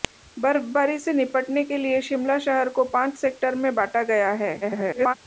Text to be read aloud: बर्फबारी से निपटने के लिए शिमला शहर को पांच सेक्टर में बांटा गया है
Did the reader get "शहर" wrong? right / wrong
right